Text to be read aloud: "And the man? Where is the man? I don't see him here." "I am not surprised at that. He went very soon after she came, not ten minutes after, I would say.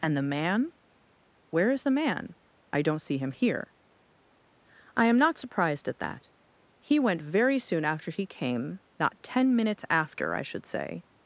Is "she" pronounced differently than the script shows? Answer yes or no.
yes